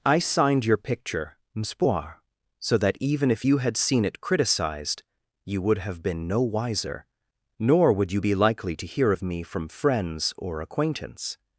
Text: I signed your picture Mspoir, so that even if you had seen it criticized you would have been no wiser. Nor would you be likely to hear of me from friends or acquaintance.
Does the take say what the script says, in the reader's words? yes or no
yes